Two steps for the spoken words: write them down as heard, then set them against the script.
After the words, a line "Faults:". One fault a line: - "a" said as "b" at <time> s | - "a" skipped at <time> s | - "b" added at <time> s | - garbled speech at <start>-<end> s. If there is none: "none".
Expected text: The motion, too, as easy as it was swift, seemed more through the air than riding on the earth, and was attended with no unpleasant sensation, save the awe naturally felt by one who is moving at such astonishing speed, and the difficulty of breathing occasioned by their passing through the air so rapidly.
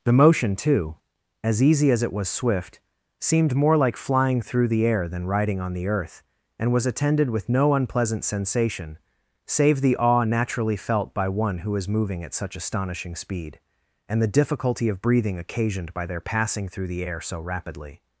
The motion, too, as easy as it was swift, seemed more like flying through the air than riding on the earth, and was attended with no unpleasant sensation, save the awe naturally felt by one who is moving at such astonishing speed, and the difficulty of breathing occasioned by their passing through the air so rapidly.
Faults:
- "like flying" added at 3.8 s